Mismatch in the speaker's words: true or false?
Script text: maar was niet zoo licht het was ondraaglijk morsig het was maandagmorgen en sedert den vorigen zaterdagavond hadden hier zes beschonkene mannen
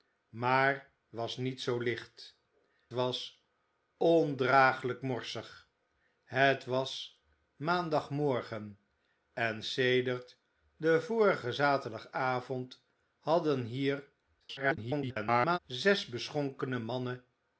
true